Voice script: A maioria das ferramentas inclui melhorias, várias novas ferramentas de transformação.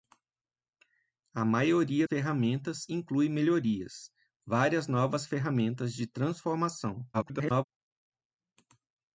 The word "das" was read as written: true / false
false